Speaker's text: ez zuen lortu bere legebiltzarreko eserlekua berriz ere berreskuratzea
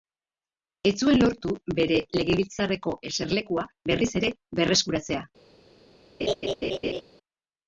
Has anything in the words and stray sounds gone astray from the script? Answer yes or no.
yes